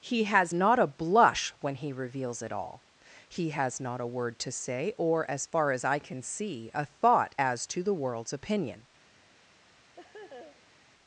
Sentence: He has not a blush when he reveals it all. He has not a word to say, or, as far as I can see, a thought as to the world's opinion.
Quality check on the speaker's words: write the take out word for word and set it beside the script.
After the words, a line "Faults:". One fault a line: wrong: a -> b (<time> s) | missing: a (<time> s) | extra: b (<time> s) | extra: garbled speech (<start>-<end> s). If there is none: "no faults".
He has not a blush when he reveals it all. He has not a word to say, or, as far as I can see, a thought as to the world's opinion.
Faults:
no faults